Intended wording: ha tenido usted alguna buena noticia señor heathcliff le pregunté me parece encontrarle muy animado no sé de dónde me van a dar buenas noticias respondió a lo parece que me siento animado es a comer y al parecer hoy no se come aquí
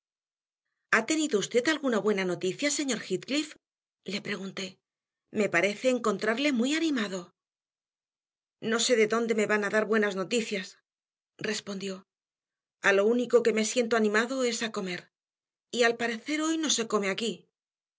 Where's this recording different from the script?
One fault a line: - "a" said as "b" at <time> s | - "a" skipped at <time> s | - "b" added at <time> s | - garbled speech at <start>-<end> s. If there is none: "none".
- "parece" said as "único" at 13.1 s